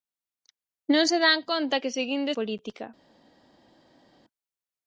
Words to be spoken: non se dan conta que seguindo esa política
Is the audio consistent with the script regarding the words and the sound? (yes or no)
no